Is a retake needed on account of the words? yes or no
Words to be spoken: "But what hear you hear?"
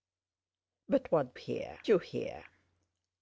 no